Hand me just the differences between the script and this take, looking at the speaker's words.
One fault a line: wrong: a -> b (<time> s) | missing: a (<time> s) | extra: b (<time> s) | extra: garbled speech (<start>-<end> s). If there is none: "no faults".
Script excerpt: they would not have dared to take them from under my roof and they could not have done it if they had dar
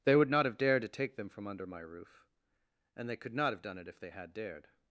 wrong: dar -> dared (4.3 s)